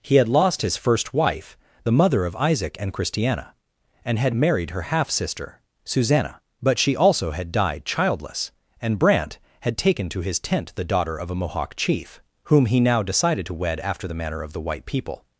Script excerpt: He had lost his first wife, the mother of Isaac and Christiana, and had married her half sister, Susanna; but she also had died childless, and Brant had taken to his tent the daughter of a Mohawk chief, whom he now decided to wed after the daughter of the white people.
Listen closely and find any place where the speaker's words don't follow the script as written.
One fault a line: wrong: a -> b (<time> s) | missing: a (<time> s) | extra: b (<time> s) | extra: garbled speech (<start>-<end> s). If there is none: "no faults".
wrong: daughter -> manner (14.1 s)